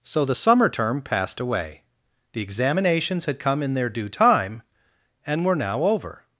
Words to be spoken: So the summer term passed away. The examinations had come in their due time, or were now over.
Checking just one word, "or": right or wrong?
wrong